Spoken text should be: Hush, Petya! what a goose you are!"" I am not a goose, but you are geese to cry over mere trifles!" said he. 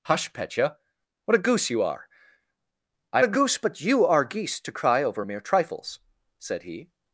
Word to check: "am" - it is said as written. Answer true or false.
false